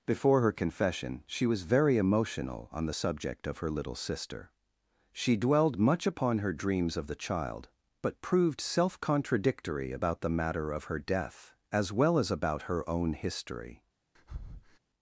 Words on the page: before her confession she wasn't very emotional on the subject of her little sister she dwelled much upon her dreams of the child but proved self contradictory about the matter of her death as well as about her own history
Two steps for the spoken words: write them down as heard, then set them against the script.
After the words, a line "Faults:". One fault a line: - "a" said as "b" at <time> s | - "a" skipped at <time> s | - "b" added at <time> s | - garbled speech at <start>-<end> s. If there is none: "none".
before her confession she was very emotional on the subject of her little sister she dwelled much upon her dreams of the child but proved self contradictory about the matter of her death as well as about her own history
Faults:
- "wasn't" said as "was" at 1.4 s